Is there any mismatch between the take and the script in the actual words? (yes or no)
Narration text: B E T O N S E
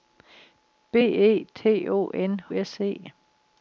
no